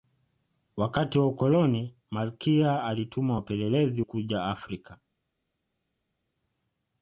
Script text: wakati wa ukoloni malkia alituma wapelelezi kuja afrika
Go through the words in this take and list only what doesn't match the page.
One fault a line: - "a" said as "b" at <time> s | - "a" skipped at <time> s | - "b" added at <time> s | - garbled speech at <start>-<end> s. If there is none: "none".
none